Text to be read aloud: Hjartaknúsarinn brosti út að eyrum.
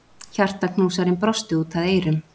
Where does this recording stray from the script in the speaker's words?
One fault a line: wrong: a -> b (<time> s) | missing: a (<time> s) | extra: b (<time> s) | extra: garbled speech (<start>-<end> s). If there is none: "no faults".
no faults